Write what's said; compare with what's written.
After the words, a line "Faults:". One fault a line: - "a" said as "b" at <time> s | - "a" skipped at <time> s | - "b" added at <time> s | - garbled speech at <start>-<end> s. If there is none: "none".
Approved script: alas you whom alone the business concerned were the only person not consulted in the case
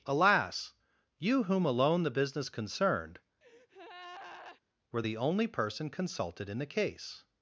alas you whom alone the business concerned were the only person consulted in the case
Faults:
- "not" skipped at 5.9 s